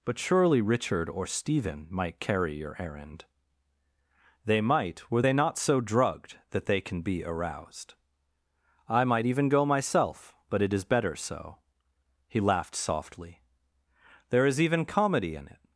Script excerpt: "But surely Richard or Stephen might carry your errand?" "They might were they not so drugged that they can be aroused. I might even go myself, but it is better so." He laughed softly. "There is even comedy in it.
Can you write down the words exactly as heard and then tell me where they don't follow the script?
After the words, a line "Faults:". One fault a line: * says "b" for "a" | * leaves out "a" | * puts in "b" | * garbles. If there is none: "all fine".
"But surely Richard or Stephen might carry your errand?" "They might were they not so drugged that they can be aroused. I might even go myself, but it is better so." He laughed softly. "There is even comedy in it.
Faults:
all fine